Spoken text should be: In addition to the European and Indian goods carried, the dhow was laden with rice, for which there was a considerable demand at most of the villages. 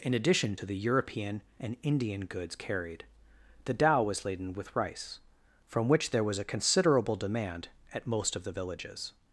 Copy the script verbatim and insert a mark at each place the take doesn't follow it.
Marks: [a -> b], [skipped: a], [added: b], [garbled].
In addition to the European and Indian goods carried, the dhow was laden with rice, [for -> from] which there was a considerable demand at most of the villages.